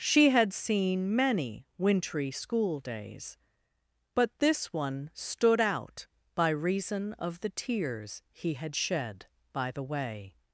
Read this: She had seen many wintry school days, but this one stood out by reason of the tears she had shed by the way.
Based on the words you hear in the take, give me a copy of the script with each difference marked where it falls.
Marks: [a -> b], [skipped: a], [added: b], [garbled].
She had seen many wintry school days, but this one stood out by reason of the tears [she -> he] had shed by the way.